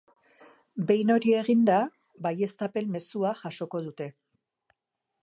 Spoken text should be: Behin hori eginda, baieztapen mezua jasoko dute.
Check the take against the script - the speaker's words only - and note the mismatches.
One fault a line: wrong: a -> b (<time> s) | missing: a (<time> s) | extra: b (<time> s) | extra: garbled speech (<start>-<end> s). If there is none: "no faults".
no faults